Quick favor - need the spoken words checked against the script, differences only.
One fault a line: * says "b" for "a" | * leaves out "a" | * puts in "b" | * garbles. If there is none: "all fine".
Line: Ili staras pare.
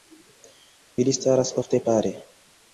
* puts in "ofte"